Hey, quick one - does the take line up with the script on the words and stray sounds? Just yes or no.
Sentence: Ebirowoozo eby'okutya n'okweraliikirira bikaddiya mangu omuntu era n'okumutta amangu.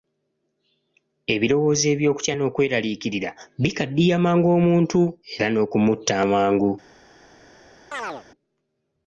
no